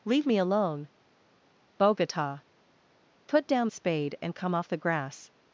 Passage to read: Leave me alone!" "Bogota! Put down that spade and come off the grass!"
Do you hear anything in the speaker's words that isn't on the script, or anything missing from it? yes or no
yes